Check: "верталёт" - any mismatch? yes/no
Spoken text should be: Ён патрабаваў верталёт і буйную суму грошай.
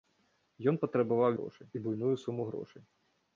yes